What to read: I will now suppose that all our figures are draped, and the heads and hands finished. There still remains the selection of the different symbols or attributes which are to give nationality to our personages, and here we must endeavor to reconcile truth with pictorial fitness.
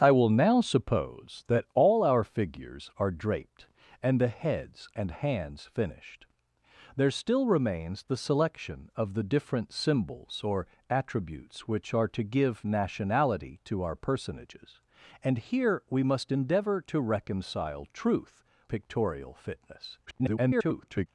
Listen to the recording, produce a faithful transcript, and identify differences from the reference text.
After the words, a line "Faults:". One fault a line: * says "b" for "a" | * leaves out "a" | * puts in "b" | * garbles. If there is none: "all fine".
I will now suppose that all our figures are draped, and the heads and hands finished. There still remains the selection of the different symbols or attributes which are to give nationality to our personages, and here we must endeavor to reconcile truth pictorial fitness. [garbled]
Faults:
* leaves out "with"
* garbles